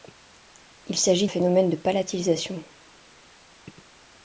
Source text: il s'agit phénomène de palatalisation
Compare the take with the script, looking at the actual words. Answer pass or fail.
pass